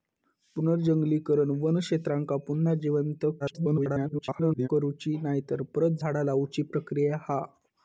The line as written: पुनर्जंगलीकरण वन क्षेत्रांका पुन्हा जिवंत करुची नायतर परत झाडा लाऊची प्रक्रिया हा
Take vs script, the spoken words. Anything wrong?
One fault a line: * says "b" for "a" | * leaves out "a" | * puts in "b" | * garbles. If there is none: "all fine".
* garbles